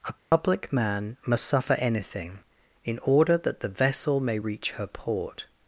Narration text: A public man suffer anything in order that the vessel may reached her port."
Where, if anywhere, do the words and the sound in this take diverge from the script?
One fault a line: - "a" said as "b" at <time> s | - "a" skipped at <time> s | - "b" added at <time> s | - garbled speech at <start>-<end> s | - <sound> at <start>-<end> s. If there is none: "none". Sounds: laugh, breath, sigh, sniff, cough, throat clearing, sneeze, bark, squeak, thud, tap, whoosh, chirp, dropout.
- dropout at 0.2-0.3 s
- "must" added at 1.3 s
- "reached" said as "reach" at 4.4 s